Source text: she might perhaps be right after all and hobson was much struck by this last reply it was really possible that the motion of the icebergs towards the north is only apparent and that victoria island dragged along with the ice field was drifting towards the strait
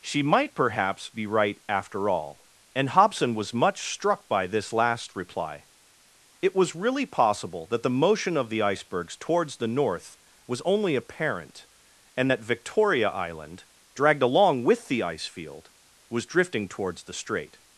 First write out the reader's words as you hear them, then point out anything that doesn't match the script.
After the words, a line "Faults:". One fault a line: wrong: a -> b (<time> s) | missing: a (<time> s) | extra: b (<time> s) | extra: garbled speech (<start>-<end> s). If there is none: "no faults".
she might perhaps be right after all and hobson was much struck by this last reply it was really possible that the motion of the icebergs towards the north was only apparent and that victoria island dragged along with the ice field was drifting towards the strait
Faults:
wrong: is -> was (10.5 s)